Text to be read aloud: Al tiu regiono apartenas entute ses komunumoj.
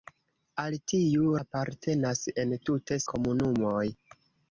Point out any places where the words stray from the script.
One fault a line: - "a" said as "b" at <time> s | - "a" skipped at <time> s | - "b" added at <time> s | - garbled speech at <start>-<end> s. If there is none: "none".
- "regiono" skipped at 1.3 s
- "ses" skipped at 3.0 s